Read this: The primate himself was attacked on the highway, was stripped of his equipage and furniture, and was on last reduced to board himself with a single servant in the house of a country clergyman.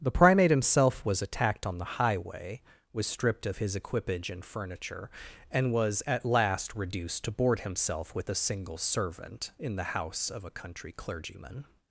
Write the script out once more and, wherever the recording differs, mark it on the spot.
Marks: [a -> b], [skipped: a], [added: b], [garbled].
The primate himself was attacked on the highway, was stripped of his equipage and furniture, and was [on -> at] last reduced to board himself with a single servant in the house of a country clergyman.